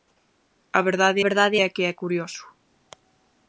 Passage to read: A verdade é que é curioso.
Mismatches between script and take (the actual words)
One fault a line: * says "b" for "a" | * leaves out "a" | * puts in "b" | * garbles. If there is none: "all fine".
* puts in "verdade"